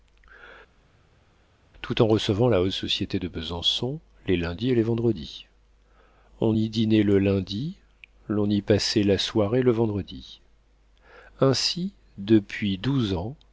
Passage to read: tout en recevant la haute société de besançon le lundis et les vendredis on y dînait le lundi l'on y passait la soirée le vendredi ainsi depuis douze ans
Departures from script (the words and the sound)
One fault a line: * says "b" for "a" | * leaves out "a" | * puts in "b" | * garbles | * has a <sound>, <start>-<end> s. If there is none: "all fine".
* says "les" for "le"